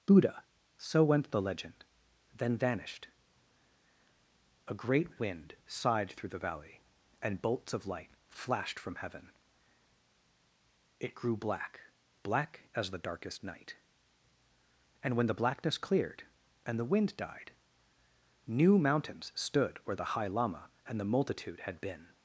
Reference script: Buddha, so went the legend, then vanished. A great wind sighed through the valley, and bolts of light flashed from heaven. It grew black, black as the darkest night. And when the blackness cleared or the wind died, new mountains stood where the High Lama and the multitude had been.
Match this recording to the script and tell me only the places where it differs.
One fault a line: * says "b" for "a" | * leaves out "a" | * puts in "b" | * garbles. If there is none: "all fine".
* says "and" for "or"